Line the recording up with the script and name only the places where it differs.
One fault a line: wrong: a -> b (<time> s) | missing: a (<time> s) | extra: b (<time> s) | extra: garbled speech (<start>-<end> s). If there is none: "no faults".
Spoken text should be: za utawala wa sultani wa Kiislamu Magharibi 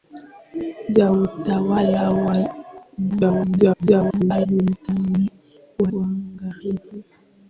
extra: garbled speech (3.1-4.5 s)
missing: Kiislamu (5.9 s)